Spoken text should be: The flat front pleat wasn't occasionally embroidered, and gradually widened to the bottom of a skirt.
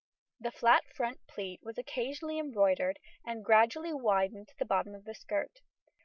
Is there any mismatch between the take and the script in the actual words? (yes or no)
yes